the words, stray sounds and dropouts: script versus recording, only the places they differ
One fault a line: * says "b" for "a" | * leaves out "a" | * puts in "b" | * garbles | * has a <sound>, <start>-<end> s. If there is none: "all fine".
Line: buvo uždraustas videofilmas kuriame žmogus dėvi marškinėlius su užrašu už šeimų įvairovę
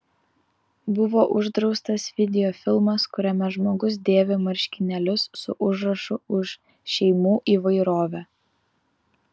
all fine